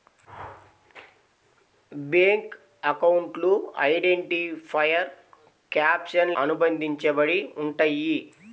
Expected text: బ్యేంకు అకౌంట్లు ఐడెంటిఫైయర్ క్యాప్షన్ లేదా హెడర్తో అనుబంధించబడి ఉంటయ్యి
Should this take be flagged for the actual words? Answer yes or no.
yes